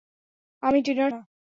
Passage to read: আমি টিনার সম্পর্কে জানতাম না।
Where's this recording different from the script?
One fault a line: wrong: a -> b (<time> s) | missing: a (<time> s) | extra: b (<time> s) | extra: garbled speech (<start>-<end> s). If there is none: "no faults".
missing: সম্পর্কে জানতাম (1.1 s)